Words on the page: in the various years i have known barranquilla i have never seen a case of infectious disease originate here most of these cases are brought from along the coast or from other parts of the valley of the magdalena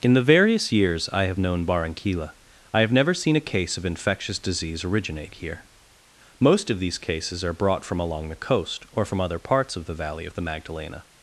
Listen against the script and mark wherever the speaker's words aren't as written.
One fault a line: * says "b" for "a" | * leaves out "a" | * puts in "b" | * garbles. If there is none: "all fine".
all fine